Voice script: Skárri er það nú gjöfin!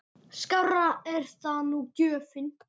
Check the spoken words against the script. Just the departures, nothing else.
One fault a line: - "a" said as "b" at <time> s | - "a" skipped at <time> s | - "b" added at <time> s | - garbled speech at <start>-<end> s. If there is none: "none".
none